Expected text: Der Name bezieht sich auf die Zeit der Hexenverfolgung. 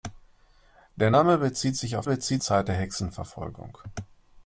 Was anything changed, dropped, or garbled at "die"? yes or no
yes